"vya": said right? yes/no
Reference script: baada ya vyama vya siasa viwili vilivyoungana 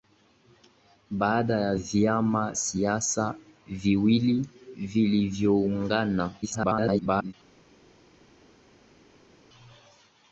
no